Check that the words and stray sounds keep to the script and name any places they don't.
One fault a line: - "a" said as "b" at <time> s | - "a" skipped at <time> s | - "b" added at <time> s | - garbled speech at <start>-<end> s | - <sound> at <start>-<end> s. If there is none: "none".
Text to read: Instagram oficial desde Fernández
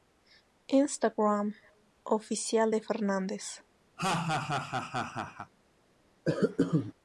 - "desde" said as "de" at 2.7 s
- laugh at 4.0-5.5 s
- cough at 6.3-6.9 s